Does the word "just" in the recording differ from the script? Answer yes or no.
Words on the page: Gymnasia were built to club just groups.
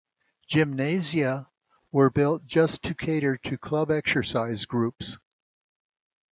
yes